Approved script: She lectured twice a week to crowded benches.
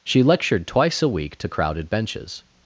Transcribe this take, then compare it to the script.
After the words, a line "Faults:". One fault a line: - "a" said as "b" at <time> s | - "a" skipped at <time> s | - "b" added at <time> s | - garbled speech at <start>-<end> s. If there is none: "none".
She lectured twice a week to crowded benches.
Faults:
none